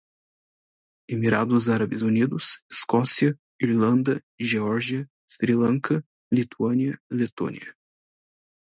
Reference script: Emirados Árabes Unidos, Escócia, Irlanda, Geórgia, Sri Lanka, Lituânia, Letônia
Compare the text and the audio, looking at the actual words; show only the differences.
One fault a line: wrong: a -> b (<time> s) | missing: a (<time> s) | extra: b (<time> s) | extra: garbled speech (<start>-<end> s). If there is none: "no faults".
no faults